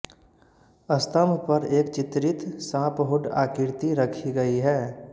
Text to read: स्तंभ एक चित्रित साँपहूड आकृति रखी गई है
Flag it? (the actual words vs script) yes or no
yes